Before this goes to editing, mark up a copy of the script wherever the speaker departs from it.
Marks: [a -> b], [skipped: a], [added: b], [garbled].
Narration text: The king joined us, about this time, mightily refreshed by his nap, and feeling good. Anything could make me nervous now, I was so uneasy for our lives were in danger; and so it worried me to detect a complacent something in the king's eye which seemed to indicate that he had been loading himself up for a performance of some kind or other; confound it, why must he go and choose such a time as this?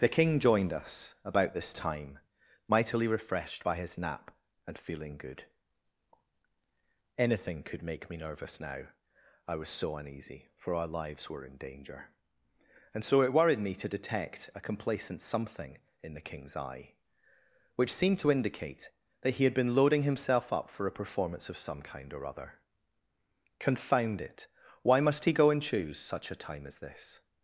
The king joined us, about this time, mightily refreshed by his nap, and feeling good. Anything could make me nervous now, I was so uneasy for our lives were in danger; and so it worried me to detect a complacent something in the king's eye which seemed to indicate that he had been loading himself up for a performance of some kind or other; confound it, why must he go and choose such a time as this?